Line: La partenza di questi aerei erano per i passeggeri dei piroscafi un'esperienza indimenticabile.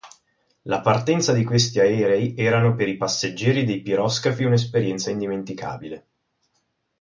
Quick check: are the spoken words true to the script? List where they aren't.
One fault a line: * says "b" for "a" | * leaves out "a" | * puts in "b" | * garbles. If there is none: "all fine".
all fine